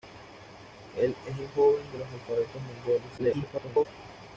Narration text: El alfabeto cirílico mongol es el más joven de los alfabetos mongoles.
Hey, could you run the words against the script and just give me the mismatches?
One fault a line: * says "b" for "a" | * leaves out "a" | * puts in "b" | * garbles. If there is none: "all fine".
* leaves out "alfabeto cirílico mongol"
* leaves out "más"
* garbles